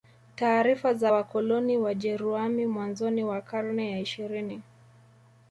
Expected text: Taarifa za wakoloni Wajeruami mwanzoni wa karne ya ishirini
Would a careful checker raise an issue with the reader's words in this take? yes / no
no